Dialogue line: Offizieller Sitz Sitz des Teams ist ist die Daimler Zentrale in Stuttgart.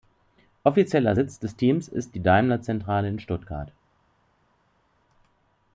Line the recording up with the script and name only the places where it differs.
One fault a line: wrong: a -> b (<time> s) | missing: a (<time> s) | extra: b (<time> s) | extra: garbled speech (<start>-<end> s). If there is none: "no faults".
missing: Sitz (1.4 s)
missing: ist (2.1 s)